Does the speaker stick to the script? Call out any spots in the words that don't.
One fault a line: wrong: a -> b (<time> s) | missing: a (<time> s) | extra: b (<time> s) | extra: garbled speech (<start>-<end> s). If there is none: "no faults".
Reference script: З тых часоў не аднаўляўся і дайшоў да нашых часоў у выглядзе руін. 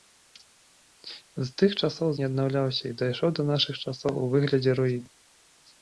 no faults